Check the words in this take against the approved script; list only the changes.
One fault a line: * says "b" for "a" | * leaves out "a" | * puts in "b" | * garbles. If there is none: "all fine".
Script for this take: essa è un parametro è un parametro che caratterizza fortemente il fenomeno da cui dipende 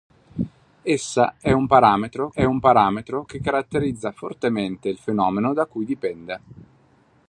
all fine